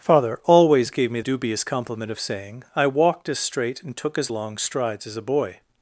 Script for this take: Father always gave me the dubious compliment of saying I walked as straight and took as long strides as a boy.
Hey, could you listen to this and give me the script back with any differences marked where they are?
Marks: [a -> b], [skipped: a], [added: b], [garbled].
Father always gave me [skipped: the] dubious compliment of saying I walked as straight and took as long strides as a boy.